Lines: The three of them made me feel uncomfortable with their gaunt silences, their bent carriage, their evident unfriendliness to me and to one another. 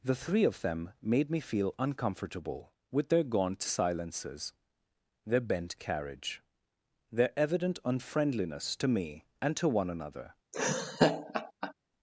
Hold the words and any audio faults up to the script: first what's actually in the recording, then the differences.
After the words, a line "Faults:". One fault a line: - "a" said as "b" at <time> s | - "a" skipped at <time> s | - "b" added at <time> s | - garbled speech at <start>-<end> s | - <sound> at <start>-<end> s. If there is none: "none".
The three of them made me feel uncomfortable with their gaunt silences, their bent carriage, their evident unfriendliness to me and to one another.
Faults:
- laugh at 10.5-11.7 s